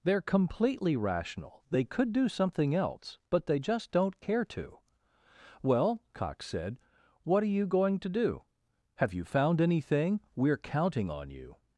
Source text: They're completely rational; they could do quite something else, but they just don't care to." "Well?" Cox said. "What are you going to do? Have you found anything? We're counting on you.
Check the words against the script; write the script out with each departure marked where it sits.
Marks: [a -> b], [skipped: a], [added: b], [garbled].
They're completely rational; they could do [skipped: quite] something else, but they just don't care to." "Well?" Cox said. "What are you going to do? Have you found anything? We're counting on you.